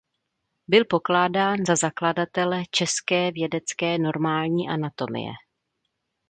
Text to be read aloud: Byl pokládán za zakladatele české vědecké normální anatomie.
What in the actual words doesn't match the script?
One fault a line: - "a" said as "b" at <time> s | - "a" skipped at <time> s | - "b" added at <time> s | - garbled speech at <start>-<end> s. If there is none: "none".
none